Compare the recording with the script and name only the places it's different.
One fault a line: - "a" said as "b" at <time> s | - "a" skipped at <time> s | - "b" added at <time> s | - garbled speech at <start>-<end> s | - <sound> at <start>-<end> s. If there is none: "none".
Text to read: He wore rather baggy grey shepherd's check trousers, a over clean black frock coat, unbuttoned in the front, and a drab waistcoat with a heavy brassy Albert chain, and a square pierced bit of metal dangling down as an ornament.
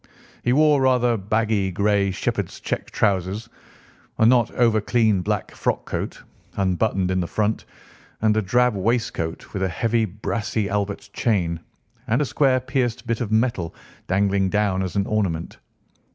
- "not" added at 4.2 s